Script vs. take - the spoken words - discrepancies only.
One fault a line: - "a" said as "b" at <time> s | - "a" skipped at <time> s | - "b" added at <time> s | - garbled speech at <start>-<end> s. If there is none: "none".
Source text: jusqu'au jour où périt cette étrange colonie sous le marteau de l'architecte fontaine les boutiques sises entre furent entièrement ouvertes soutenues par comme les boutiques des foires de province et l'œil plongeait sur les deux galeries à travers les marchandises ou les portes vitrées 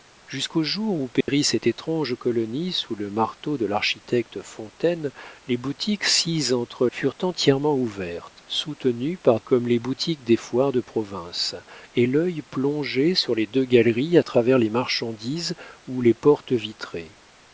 none